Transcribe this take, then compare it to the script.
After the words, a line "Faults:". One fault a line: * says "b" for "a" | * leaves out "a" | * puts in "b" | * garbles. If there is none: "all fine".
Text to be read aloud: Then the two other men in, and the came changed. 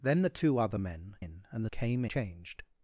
Then the two other men in, and the came changed.
Faults:
all fine